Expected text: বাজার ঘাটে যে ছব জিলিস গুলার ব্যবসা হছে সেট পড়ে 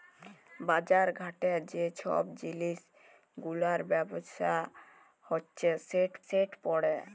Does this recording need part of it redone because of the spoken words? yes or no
yes